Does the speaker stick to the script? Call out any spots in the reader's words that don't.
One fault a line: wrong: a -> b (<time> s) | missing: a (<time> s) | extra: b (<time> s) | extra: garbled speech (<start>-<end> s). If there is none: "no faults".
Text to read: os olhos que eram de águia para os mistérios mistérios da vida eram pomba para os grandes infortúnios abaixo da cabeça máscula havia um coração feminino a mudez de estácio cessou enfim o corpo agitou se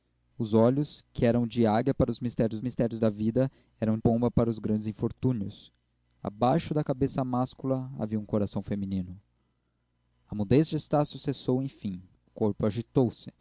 no faults